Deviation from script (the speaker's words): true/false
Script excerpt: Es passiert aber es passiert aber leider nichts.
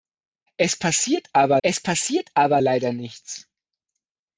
false